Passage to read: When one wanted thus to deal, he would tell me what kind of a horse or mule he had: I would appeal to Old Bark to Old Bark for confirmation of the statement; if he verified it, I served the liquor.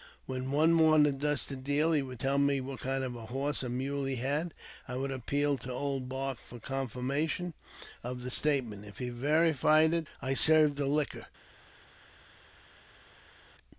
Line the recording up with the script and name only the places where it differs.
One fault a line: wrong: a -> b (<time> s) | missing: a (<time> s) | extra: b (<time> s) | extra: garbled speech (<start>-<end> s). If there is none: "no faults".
missing: to Old Bark (6.4 s)